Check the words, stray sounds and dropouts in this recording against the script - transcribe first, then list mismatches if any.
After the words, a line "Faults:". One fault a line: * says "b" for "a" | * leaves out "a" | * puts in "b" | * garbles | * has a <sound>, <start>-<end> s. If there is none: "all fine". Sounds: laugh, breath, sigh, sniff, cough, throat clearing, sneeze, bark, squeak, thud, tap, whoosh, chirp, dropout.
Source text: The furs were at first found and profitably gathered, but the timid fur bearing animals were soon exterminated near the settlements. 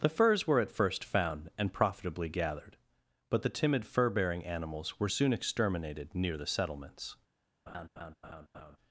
The furs were at first found and profitably gathered, but the timid fur bearing animals were soon exterminated near the settlements.
Faults:
* has a laugh, 7.7-8.8 s